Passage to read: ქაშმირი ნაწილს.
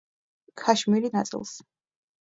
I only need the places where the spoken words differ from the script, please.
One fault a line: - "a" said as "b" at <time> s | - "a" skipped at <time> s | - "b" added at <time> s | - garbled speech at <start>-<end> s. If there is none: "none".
none